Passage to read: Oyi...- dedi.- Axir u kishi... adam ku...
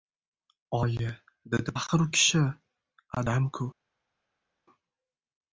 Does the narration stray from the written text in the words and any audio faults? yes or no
no